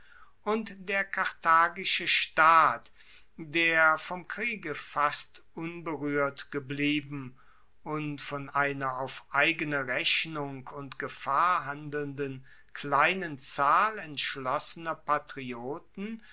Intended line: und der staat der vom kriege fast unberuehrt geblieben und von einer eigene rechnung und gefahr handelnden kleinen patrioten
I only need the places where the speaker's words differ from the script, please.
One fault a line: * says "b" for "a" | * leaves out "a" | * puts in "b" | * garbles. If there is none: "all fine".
* puts in "karthagische"
* puts in "auf"
* puts in "zahl entschlossener"